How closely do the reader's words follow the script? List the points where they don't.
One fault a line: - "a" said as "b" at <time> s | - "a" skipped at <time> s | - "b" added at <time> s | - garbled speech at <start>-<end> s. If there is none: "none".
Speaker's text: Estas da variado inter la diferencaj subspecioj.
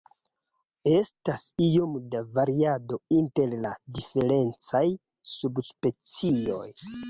- "iom" added at 1.6 s